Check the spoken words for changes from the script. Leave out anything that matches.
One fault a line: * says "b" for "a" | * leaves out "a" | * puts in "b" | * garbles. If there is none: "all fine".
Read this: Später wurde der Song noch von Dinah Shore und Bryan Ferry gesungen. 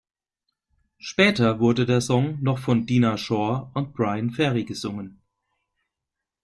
all fine